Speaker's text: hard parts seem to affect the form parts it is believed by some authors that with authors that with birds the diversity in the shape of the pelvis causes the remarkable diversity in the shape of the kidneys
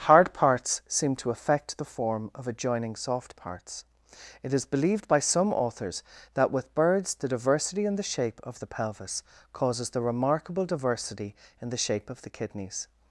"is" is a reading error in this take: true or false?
false